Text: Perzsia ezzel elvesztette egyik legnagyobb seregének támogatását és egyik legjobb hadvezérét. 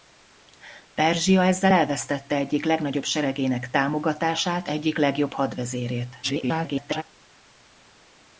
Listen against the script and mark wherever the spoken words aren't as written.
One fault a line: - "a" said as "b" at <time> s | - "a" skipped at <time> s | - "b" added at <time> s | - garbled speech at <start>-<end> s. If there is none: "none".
- "és" skipped at 4.7 s
- garbled speech at 6.2-7.0 s